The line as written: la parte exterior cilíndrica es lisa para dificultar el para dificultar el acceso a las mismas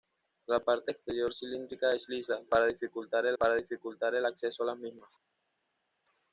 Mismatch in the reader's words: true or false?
false